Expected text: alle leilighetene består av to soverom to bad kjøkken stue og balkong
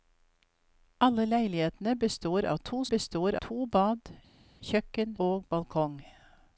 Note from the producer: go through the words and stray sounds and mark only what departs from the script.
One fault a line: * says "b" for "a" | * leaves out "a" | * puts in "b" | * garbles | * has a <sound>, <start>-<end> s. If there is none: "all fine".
* says "består" for "soverom"
* leaves out "stue"